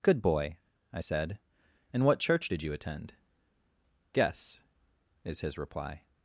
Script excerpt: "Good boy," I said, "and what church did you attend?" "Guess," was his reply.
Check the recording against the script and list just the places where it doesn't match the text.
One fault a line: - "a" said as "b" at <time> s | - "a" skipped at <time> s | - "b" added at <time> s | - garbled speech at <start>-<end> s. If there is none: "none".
- "was" said as "is" at 5.2 s